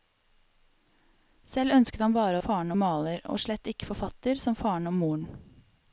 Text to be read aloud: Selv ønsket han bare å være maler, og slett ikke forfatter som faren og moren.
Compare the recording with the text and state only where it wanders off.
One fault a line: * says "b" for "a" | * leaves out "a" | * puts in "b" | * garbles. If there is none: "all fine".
* says "faren" for "være"